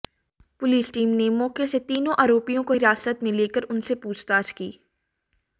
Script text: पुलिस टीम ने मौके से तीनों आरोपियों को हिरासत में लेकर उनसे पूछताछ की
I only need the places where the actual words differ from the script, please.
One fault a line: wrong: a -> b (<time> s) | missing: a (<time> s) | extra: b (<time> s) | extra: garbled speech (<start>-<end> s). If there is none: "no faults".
no faults